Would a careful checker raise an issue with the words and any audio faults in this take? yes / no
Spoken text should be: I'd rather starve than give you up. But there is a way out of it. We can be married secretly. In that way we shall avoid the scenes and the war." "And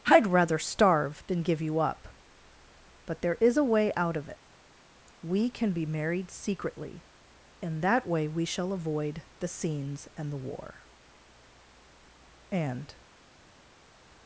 no